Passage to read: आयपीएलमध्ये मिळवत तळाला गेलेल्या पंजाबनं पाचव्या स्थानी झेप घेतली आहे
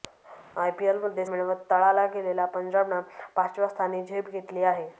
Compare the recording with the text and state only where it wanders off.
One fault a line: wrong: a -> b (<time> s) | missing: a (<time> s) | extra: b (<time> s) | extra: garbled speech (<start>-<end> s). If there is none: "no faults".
no faults